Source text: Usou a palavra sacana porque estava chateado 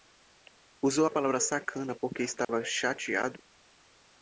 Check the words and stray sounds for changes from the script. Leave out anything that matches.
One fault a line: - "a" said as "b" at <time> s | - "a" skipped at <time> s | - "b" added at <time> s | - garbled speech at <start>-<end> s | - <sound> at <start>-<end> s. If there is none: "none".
- dropout at 2.4-2.5 s